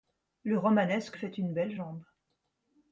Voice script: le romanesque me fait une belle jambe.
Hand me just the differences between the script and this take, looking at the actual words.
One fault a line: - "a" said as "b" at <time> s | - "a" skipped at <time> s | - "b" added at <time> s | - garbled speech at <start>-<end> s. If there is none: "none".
- "me" skipped at 1.2 s